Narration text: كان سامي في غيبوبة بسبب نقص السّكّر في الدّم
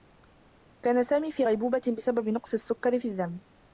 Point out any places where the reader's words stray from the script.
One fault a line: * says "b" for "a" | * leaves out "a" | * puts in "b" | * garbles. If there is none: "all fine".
all fine